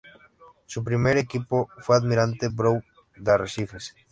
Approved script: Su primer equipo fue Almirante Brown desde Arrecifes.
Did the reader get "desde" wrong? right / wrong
wrong